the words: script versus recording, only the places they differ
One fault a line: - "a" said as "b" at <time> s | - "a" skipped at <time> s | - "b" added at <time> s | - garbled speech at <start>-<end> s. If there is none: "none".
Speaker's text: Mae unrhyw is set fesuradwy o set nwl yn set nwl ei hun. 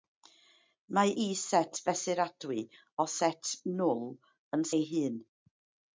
- "unrhyw" skipped at 1.1 s
- "set nwl" skipped at 4.6 s